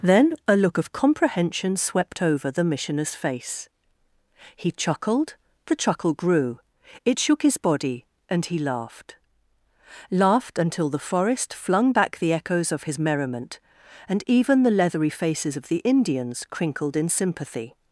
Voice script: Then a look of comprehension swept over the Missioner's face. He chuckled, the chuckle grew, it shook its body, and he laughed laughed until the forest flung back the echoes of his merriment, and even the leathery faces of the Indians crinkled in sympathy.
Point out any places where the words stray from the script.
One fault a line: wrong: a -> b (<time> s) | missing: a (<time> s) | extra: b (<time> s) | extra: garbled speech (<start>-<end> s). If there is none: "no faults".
wrong: its -> his (7.4 s)